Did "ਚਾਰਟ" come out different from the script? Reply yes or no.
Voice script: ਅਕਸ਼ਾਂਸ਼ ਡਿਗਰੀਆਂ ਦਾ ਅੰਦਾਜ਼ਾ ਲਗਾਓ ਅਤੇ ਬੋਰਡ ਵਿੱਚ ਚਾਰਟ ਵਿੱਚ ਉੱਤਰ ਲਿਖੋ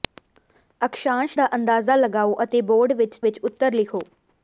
yes